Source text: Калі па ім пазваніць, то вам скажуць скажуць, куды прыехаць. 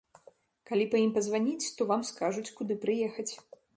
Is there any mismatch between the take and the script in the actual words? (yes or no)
yes